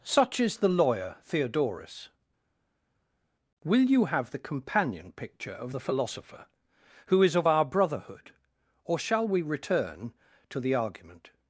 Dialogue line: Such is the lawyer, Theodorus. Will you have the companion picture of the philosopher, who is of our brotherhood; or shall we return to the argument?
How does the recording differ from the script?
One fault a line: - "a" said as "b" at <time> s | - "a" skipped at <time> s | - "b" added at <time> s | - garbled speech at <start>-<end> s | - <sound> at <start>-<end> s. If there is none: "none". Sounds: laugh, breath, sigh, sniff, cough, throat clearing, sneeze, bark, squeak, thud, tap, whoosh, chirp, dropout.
none